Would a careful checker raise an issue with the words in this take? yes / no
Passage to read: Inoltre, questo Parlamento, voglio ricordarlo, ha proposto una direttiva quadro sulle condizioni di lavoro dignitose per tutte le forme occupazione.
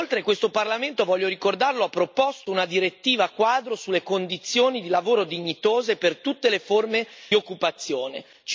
no